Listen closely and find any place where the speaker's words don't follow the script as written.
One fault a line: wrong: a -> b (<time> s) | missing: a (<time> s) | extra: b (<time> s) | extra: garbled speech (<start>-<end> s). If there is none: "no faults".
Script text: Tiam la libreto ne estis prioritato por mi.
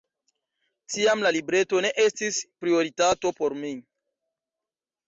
no faults